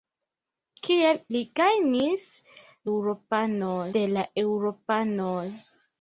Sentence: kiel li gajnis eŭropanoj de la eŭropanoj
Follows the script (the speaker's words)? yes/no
yes